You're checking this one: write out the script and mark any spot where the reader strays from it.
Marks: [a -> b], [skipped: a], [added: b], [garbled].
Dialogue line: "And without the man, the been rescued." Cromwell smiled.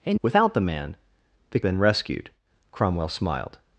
"And without the man, the been rescued." Cromwell smiled.